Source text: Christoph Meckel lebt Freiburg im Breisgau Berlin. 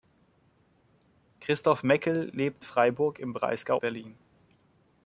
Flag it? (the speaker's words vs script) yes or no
no